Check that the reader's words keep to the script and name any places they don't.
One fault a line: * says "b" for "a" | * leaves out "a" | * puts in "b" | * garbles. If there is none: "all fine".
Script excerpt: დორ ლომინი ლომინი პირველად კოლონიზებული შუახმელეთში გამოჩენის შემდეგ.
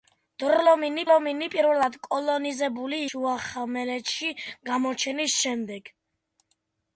all fine